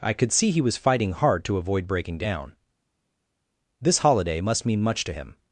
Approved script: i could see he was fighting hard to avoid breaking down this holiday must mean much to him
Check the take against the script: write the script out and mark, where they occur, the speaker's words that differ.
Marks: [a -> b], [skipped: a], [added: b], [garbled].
i could see he was fighting hard to avoid breaking down this holiday must mean much to him